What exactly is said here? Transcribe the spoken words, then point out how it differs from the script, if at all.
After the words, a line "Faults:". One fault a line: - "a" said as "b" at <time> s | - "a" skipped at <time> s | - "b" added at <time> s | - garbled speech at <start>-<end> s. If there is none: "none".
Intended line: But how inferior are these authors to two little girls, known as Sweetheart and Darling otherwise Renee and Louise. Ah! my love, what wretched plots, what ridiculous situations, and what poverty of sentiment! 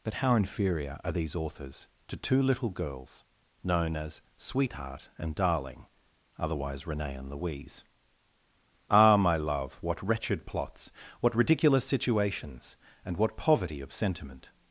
But how inferior are these authors to two little girls, known as Sweetheart and Darling otherwise Renee and Louise. Ah! my love, what wretched plots, what ridiculous situations, and what poverty of sentiment!
Faults:
none